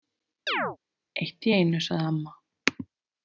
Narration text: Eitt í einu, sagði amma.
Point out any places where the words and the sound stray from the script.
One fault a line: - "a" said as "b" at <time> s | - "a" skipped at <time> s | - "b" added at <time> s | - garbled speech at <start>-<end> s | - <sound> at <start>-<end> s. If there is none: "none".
- chirp at 0.5-0.8 s